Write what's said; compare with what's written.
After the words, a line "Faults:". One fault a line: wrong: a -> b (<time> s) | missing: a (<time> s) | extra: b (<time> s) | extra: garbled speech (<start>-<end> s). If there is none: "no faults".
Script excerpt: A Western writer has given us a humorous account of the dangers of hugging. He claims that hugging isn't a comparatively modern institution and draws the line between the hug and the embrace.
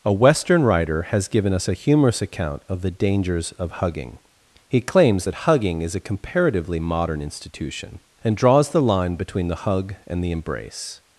A Western writer has given us a humorous account of the dangers of hugging. He claims that hugging is a comparatively modern institution and draws the line between the hug and the embrace.
Faults:
wrong: isn't -> is (5.8 s)